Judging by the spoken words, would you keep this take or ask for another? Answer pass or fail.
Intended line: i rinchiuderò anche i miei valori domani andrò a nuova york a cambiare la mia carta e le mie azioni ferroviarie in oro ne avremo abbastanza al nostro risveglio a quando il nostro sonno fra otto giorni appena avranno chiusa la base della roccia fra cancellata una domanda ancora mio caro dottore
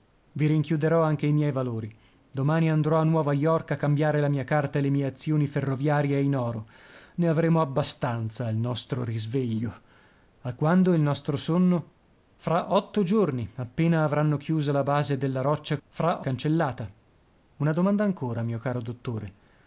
pass